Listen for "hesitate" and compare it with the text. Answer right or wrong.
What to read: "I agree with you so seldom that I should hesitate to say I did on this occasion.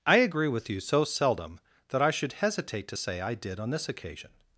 right